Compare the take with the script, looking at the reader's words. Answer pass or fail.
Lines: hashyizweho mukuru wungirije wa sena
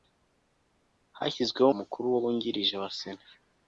pass